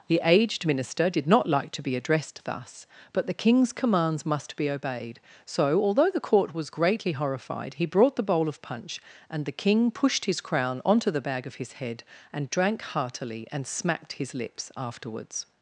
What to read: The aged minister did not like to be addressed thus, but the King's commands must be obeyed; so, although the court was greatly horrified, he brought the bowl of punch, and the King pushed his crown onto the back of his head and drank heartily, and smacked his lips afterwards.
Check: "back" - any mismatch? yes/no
yes